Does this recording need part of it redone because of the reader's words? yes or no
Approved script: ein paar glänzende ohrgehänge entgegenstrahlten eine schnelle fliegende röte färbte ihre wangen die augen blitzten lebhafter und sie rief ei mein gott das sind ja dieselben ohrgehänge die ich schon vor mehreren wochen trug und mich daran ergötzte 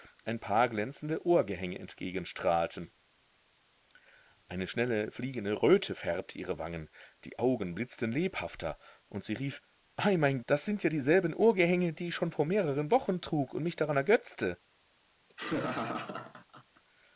yes